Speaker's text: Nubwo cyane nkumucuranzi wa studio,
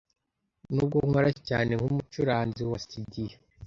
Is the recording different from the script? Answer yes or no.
yes